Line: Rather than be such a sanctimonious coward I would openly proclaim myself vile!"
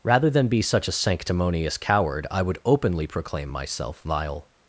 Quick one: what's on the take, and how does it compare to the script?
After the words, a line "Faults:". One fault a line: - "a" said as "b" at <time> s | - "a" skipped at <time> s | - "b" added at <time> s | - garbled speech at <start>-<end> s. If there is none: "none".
Rather than be such a sanctimonious coward I would openly proclaim myself vile!"
Faults:
none